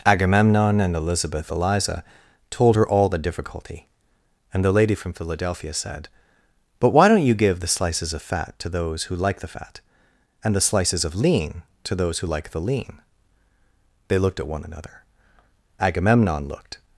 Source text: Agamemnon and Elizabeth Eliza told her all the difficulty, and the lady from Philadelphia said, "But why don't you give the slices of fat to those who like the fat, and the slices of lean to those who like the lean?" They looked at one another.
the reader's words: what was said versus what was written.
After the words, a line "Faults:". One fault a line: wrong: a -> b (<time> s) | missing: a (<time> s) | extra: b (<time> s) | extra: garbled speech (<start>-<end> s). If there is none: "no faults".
Agamemnon and Elizabeth Eliza told her all the difficulty, and the lady from Philadelphia said, "But why don't you give the slices of fat to those who like the fat, and the slices of lean to those who like the lean?" They looked at one another. Agamemnon looked
Faults:
extra: Agamemnon looked (15.8 s)